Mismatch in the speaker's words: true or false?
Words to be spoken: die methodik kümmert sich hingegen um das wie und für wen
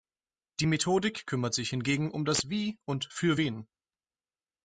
false